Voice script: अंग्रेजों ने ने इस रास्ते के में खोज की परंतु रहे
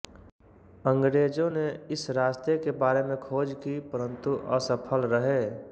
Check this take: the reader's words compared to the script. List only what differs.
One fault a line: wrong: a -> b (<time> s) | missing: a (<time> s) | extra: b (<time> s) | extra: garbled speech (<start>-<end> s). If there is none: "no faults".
missing: ने (1.7 s)
extra: बारे (2.8 s)
extra: असफल (4.5 s)